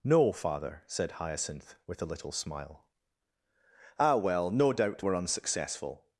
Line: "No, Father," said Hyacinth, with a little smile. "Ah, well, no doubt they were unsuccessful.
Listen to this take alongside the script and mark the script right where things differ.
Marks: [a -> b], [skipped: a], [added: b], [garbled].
"No, Father," said Hyacinth, with a little smile. "Ah, well, no doubt [skipped: they] were unsuccessful.